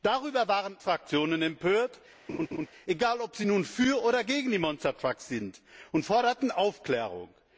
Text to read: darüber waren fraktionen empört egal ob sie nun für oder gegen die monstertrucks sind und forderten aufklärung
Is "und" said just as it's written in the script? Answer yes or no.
yes